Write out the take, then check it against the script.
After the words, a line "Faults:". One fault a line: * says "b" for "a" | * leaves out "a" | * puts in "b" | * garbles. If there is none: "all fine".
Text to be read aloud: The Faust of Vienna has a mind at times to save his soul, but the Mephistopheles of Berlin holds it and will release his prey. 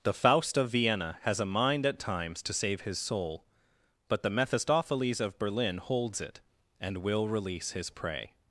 The Faust of Vienna has a mind at times to save his soul, but the Mephistopheles of Berlin holds it and will release his prey.
Faults:
all fine